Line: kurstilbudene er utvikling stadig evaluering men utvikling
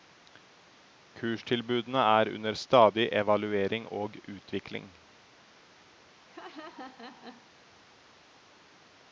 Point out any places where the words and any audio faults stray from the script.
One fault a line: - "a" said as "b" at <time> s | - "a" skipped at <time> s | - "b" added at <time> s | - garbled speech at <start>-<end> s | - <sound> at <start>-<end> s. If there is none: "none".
- "utvikling" said as "under" at 2.4 s
- "men" said as "og" at 3.9 s
- laugh at 6.3-7.5 s